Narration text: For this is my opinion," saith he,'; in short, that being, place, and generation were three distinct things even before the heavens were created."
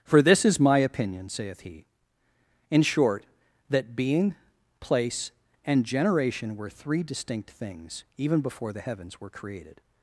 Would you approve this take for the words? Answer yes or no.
yes